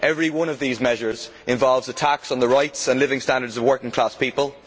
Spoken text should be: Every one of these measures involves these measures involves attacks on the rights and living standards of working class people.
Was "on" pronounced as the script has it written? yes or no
yes